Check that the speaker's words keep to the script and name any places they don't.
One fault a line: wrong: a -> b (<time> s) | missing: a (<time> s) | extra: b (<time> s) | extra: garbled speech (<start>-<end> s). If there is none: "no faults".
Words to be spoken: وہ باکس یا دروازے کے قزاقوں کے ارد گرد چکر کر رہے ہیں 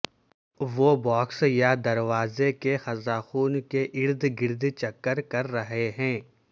no faults